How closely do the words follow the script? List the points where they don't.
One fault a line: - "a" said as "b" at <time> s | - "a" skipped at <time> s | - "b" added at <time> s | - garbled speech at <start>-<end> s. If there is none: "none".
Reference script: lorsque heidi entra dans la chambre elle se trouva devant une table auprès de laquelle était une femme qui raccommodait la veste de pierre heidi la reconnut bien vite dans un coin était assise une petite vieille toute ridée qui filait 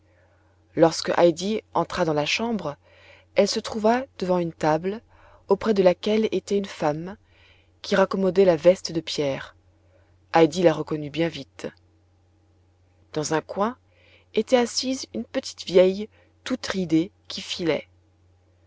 none